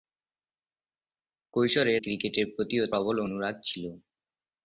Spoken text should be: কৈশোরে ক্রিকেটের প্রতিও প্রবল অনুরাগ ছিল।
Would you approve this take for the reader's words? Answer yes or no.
yes